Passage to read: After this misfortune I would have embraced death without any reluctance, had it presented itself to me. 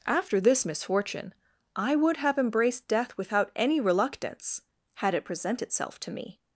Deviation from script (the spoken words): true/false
true